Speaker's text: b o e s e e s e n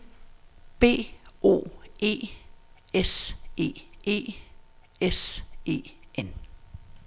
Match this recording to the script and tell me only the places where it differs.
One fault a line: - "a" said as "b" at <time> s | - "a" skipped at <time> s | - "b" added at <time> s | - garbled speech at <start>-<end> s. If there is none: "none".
none